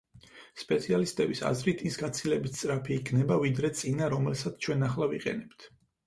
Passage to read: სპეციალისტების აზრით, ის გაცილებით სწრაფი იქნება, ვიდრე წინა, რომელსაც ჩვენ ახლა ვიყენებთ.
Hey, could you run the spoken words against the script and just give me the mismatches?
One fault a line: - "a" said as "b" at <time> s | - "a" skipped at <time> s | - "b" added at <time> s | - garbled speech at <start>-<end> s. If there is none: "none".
none